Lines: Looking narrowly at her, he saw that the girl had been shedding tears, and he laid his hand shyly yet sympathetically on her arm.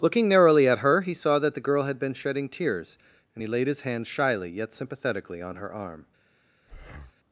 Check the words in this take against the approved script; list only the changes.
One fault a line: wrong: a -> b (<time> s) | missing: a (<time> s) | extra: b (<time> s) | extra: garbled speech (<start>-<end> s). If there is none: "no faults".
no faults